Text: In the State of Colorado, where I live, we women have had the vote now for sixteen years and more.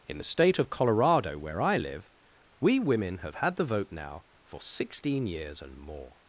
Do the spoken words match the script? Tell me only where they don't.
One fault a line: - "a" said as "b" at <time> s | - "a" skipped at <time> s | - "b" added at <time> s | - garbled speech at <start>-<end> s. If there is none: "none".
none